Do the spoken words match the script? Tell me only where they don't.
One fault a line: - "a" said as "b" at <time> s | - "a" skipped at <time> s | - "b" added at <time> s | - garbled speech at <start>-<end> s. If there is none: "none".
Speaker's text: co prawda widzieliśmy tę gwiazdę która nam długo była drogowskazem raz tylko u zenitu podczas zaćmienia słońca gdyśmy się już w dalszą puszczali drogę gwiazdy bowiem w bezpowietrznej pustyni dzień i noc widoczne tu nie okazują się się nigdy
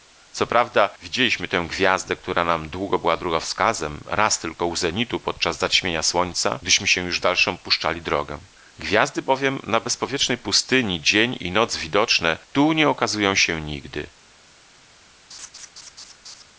- "w" said as "na" at 9.6 s
- "się" skipped at 13.6 s